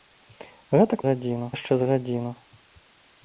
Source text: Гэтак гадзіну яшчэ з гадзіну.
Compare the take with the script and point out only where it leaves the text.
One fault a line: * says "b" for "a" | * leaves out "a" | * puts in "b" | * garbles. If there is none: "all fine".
all fine